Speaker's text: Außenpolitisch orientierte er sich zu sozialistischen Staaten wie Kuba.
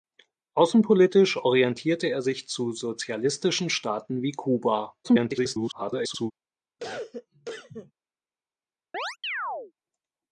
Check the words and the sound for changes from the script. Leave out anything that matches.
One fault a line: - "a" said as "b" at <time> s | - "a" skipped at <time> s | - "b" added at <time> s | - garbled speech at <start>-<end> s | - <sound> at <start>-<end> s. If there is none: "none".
- garbled speech at 5.0-6.3 s
- cough at 6.8-7.9 s
- chirp at 8.9-9.7 s